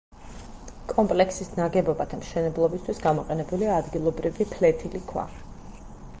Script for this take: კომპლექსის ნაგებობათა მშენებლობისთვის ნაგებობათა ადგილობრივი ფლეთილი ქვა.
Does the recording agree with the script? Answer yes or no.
no